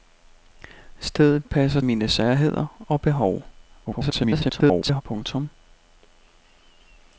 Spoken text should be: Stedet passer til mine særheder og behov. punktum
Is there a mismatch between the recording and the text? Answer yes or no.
yes